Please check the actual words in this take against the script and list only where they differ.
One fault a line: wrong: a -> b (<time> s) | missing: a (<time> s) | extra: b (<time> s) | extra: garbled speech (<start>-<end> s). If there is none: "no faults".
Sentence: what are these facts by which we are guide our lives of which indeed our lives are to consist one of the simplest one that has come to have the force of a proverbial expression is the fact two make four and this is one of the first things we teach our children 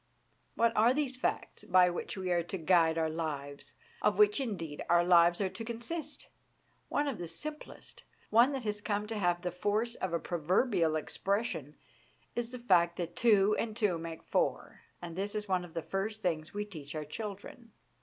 extra: to (2.4 s)
extra: that two and (13.0 s)